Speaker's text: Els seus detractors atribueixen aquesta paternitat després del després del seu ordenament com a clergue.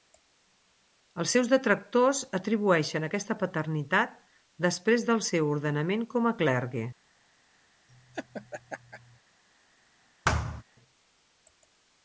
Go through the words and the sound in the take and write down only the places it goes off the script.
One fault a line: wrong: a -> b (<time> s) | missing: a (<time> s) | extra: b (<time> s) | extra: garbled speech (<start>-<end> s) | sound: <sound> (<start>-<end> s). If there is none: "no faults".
missing: després del (5.2 s)
sound: laugh (7.9-9.2 s)
sound: thud (10.2-10.6 s)